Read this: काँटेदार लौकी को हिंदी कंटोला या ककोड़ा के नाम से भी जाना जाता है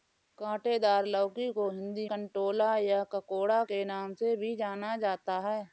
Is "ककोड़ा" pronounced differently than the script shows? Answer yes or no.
no